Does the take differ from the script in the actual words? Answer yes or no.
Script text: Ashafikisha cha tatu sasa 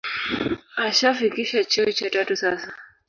yes